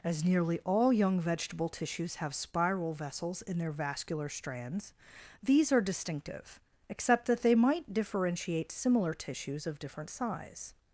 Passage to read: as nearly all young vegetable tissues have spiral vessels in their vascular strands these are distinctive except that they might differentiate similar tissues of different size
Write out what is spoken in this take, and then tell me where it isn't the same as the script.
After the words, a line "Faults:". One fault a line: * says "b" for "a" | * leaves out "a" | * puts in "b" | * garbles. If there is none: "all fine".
as nearly all young vegetable tissues have spiral vessels in their vascular strands these are distinctive except that they might differentiate similar tissues of different size
Faults:
all fine